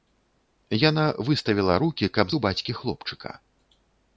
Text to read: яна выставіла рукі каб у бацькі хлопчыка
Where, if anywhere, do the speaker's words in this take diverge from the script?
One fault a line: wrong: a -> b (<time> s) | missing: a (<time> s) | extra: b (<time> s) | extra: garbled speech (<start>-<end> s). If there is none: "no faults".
no faults